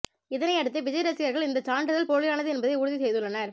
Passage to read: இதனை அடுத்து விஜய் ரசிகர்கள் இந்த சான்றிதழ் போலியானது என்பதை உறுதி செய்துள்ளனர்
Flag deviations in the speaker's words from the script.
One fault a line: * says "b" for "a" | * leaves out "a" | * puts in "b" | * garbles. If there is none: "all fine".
all fine